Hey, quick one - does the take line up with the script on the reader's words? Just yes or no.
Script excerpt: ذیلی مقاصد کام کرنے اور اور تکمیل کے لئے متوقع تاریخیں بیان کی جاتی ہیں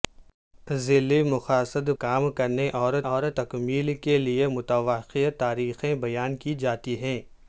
yes